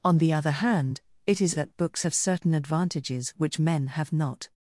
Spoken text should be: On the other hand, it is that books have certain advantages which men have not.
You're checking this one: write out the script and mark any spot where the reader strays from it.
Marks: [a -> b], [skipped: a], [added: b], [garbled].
On the other hand, it is that books have certain advantages which men have not.